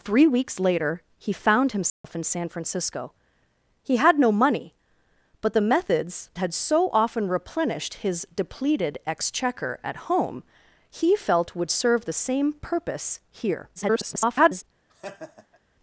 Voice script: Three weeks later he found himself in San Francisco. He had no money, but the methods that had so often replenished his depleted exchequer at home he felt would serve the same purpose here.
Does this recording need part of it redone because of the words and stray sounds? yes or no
yes